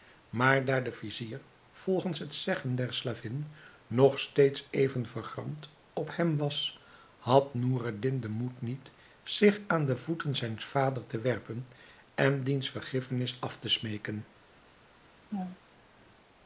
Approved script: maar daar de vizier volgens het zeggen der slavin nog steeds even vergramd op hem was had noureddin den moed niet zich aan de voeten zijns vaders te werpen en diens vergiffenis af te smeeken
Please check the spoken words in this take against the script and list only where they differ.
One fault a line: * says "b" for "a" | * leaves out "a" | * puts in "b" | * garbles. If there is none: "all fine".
all fine